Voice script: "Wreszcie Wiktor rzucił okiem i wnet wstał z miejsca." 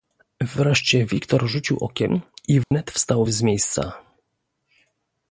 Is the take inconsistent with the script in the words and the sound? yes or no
yes